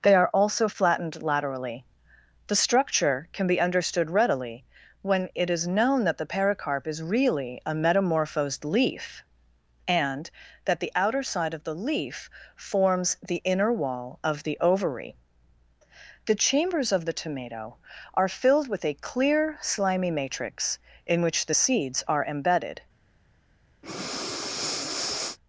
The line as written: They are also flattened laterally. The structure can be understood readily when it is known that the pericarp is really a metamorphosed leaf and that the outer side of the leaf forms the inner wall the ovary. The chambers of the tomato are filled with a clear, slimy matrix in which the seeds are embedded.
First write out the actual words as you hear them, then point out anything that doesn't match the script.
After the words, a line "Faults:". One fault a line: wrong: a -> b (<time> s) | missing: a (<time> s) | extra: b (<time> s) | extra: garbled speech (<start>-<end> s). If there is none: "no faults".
They are also flattened laterally. The structure can be understood readily when it is known that the pericarp is really a metamorphosed leaf and that the outer side of the leaf forms the inner wall of the ovary. The chambers of the tomato are filled with a clear, slimy matrix in which the seeds are embedded.
Faults:
extra: of (14.2 s)